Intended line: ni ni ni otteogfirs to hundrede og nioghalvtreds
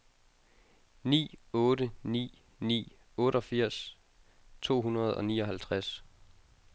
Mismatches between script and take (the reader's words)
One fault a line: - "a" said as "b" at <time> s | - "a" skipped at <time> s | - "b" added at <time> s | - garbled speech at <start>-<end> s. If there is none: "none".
- "otte" added at 1.6 s